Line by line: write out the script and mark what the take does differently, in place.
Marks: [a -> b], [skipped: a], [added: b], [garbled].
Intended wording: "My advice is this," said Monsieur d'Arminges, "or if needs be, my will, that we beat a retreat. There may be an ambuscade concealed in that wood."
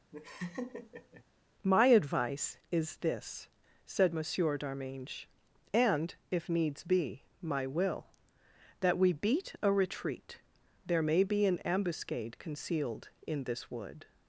"My advice is this," said Monsieur d'Arminges, ["or -> and] if needs be, my will, that we beat a retreat. There may be an ambuscade concealed in [that -> this] wood."